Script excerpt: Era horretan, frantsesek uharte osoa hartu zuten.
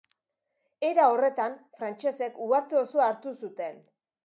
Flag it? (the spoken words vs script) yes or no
no